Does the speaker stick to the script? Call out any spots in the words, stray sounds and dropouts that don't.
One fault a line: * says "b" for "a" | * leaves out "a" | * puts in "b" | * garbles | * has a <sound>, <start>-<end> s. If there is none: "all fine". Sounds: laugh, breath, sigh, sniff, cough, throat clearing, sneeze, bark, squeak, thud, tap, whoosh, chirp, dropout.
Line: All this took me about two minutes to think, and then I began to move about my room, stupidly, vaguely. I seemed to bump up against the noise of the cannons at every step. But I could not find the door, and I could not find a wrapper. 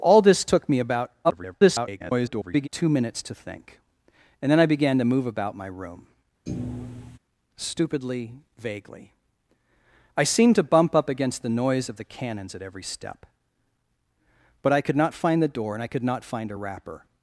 * garbles
* has a thud, 6.5-7.2 s